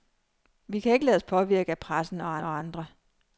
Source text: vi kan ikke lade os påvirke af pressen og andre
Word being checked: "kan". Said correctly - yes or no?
yes